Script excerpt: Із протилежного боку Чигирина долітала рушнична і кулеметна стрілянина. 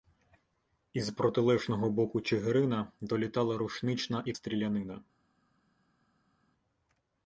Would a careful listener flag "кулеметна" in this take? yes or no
yes